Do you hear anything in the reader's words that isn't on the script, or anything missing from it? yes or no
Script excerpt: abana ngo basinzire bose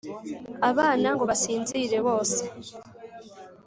no